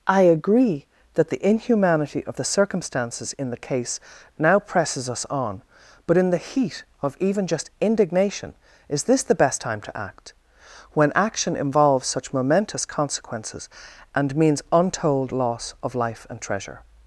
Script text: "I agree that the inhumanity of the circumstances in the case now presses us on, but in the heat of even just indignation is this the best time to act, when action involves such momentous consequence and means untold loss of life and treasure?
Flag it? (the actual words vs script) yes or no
yes